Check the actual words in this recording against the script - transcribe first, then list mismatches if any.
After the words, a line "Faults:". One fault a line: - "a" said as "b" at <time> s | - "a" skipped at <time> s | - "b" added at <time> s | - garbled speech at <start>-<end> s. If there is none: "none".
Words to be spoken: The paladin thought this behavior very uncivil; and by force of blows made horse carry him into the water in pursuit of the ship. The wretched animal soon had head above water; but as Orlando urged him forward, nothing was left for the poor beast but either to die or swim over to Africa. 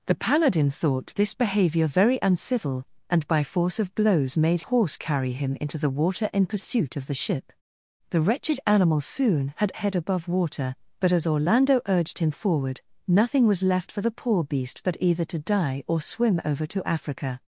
The paladin thought this behavior very uncivil; and by force of blows made horse carry him into the water in pursuit of the ship. The wretched animal soon had head above water; but as Orlando urged him forward, nothing was left for the poor beast but either to die or swim over to Africa.
Faults:
none